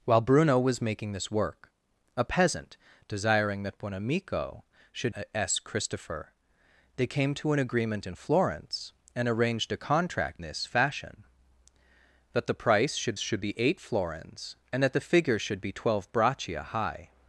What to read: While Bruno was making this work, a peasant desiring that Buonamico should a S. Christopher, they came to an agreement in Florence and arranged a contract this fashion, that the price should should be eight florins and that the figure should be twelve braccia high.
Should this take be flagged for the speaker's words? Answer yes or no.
no